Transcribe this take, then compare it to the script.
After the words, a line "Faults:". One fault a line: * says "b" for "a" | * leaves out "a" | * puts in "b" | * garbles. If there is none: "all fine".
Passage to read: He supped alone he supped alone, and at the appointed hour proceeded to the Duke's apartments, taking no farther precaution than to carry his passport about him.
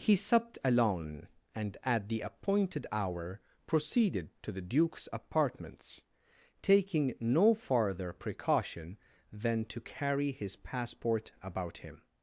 He supped alone, and at the appointed hour proceeded to the Duke's apartments, taking no farther precaution than to carry his passport about him.
Faults:
* leaves out "he supped alone"